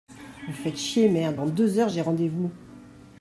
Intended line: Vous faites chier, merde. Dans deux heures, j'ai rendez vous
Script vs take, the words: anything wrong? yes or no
no